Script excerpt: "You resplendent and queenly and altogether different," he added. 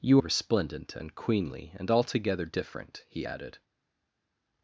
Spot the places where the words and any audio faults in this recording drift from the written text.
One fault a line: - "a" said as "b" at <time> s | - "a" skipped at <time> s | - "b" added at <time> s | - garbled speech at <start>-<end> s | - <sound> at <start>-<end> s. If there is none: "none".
none